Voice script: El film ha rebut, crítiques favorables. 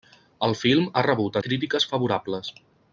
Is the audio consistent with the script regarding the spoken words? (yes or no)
yes